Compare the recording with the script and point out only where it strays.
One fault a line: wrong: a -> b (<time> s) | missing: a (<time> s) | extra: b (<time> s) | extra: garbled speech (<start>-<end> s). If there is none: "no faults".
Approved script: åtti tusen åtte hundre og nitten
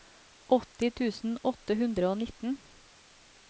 no faults